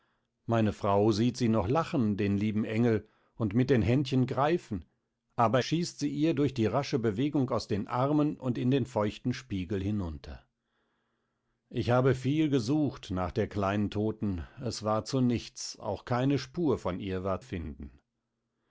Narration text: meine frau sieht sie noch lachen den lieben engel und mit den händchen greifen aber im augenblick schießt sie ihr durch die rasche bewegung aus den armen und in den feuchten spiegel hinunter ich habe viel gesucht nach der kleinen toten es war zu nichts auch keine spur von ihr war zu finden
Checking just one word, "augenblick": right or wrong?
wrong